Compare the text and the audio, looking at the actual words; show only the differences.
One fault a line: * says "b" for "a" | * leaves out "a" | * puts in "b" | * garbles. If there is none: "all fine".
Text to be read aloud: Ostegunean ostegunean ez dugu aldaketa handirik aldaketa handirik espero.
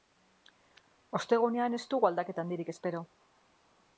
* leaves out "ostegunean"
* leaves out "aldaketa handirik"